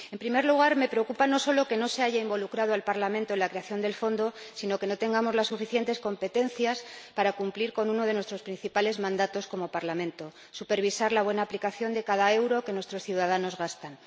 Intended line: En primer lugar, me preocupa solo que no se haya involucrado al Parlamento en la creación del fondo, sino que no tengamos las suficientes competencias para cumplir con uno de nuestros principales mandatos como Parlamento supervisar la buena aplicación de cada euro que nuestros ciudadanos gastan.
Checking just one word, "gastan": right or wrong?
right